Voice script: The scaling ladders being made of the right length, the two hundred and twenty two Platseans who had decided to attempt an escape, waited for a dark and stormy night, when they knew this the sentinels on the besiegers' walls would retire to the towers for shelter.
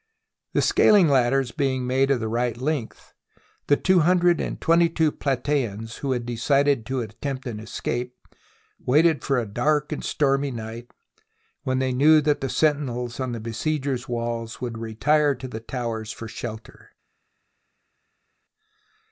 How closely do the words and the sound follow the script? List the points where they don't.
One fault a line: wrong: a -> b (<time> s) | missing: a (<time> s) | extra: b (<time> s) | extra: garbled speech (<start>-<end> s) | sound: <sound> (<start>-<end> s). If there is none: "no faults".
wrong: this -> that (12.2 s)